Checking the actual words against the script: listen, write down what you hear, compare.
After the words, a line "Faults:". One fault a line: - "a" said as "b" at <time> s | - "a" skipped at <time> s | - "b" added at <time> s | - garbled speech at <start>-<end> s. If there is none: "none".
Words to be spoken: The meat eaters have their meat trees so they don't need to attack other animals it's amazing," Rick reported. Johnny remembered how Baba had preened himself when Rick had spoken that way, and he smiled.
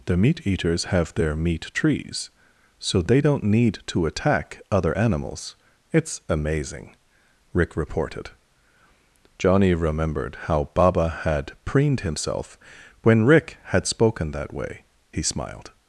The meat eaters have their meat trees so they don't need to attack other animals it's amazing," Rick reported. Johnny remembered how Baba had preened himself when Rick had spoken that way, he smiled.
Faults:
- "and" skipped at 14.8 s